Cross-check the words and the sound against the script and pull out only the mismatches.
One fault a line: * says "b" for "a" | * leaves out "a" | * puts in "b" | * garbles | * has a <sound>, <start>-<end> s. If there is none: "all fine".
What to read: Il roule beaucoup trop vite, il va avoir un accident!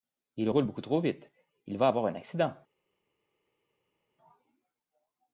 all fine